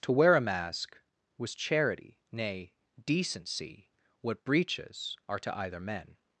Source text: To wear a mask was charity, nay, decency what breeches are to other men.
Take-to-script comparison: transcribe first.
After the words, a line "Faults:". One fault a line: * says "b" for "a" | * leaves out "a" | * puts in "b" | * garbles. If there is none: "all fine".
To wear a mask was charity, nay, decency what breeches are to either men.
Faults:
* says "either" for "other"